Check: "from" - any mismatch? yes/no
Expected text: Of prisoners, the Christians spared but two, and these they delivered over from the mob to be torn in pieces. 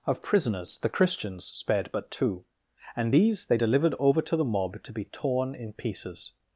yes